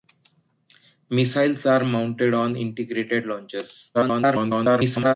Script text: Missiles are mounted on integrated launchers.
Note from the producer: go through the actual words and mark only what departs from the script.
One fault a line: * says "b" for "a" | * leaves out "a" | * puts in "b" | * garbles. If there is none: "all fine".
* garbles